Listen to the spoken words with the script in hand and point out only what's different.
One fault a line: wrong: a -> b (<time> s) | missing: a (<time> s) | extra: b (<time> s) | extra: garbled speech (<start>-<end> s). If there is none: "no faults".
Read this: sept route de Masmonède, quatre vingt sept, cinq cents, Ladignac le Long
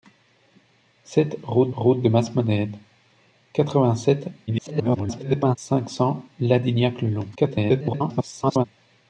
extra: route (1.7 s)
extra: garbled speech (4.5-5.6 s)
extra: garbled speech (7.3-8.6 s)